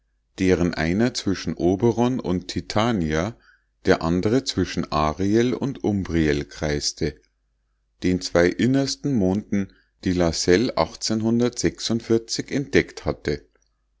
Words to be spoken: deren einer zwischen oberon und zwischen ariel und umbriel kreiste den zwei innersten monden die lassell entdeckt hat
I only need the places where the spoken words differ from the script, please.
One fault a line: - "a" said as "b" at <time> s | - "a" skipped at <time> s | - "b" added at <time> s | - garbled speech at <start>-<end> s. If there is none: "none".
- "titania der andre" added at 2.5 s
- "hat" said as "hatte" at 13.1 s